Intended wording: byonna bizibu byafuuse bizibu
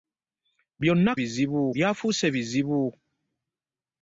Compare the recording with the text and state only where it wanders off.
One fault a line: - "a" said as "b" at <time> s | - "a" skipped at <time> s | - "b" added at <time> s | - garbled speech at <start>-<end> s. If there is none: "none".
none